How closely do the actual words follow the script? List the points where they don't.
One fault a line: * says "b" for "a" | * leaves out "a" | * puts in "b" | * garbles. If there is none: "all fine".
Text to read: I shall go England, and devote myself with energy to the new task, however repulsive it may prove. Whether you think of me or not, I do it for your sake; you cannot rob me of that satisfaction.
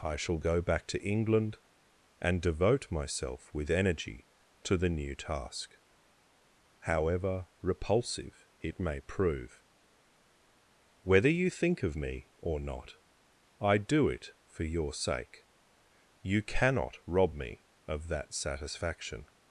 * puts in "back to"